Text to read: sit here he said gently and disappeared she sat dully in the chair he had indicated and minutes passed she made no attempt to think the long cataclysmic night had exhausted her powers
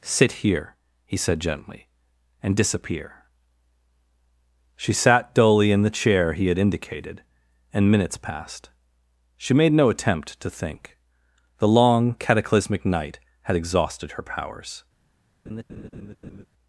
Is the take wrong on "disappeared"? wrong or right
wrong